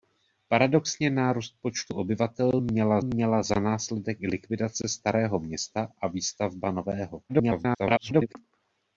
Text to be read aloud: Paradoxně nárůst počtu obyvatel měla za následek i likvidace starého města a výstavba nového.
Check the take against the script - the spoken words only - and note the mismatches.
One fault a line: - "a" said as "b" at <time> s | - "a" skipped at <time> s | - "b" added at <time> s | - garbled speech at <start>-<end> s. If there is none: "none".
- "měla" added at 3.0 s
- garbled speech at 7.3-8.4 s